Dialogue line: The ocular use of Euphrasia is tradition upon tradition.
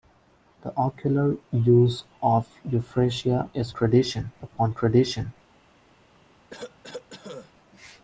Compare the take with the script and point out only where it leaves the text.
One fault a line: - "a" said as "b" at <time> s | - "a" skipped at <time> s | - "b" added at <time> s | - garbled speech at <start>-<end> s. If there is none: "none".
none